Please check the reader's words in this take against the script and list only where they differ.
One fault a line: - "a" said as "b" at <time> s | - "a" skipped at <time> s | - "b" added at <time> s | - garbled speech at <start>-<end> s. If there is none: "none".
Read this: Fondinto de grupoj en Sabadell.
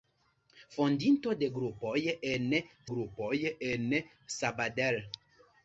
- "grupoj en" added at 2.9 s